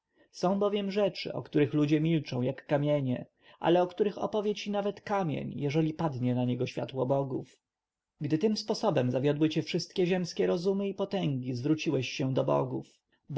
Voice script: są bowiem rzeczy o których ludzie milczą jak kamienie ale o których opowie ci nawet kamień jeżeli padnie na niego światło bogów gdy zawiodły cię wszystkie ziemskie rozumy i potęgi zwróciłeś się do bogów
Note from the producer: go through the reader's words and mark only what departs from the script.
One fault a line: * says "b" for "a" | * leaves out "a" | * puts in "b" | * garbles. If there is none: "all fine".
* puts in "tym sposobem"